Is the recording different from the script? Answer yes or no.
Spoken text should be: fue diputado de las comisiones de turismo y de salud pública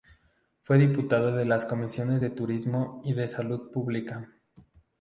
no